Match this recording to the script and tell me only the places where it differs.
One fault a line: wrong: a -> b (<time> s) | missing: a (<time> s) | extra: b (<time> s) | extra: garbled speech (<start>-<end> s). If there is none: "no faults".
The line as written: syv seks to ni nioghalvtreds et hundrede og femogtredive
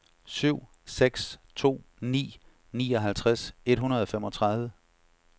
no faults